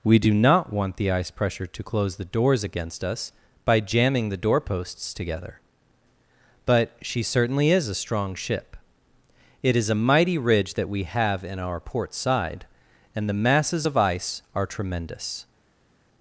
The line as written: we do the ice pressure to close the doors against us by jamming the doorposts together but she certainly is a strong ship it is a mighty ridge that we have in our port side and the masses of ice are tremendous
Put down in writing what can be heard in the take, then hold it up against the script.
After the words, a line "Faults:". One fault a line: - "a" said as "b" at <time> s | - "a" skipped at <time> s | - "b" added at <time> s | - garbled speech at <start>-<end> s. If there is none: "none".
we do not want the ice pressure to close the doors against us by jamming the doorposts together but she certainly is a strong ship it is a mighty ridge that we have in our port side and the masses of ice are tremendous
Faults:
- "not want" added at 0.3 s